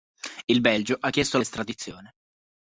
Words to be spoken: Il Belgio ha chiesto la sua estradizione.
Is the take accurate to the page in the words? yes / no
no